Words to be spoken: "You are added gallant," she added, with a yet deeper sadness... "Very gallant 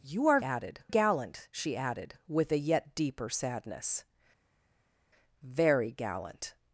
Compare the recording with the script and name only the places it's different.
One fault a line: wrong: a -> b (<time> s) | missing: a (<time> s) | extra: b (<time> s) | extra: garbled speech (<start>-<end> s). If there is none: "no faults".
no faults